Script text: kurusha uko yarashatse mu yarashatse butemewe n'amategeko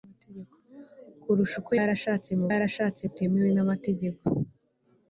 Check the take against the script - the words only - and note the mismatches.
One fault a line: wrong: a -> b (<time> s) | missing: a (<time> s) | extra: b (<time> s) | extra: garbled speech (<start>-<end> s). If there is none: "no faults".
no faults